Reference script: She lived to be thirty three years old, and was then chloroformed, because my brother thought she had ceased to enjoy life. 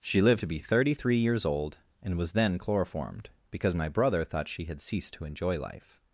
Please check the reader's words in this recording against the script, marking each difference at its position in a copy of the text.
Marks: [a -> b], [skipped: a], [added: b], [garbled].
She lived to be thirty three years old, and was then chloroformed, because my brother thought she had ceased to enjoy life.